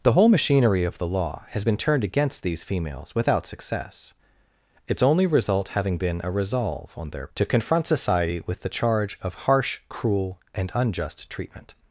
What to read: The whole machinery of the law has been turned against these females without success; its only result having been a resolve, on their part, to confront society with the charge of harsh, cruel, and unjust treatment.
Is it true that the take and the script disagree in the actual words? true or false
true